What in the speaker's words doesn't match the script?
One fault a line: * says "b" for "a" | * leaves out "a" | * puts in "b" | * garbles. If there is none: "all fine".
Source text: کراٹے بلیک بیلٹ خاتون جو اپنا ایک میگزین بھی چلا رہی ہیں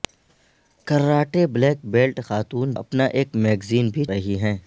* leaves out "جو"
* leaves out "چلا"